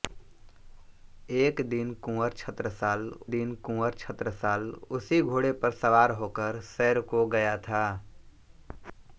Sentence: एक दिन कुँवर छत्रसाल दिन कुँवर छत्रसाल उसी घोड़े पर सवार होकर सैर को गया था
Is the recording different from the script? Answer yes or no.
no